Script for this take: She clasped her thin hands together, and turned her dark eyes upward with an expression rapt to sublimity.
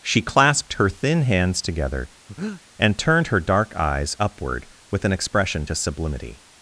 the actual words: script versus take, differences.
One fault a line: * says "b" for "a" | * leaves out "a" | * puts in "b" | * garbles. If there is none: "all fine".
* leaves out "rapt"